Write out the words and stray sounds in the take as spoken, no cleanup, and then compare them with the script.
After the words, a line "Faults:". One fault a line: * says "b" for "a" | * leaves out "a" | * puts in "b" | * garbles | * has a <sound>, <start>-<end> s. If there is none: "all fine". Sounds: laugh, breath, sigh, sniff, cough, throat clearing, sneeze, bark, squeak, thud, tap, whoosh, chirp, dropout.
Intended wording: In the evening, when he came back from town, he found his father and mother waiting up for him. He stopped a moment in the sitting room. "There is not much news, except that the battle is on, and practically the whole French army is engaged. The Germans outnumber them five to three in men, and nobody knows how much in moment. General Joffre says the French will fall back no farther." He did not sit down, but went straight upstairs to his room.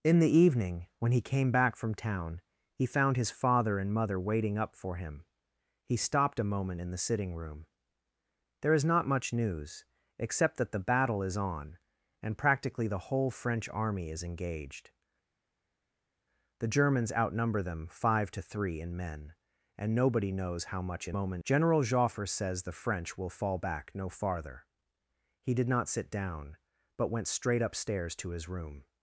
In the evening, when he came back from town, he found his father and mother waiting up for him. He stopped a moment in the sitting room. "There is not much news, except that the battle is on, and practically the whole French army is engaged. The Germans outnumber them five to three in men, and nobody knows how much in moment. General Joffre says the French will fall back no farther." He did not sit down, but went straight upstairs to his room.
Faults:
all fine